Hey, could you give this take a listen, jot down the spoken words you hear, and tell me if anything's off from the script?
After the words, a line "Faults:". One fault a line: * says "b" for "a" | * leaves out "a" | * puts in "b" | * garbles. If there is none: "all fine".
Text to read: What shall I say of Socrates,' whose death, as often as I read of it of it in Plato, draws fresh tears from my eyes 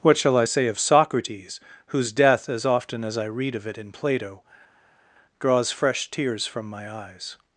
What shall I say of Socrates,' whose death, as often as I read of it in Plato, draws fresh tears from my eyes
Faults:
* leaves out "of it"